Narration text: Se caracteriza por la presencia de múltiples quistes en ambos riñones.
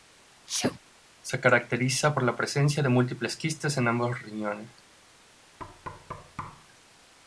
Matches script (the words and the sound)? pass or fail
fail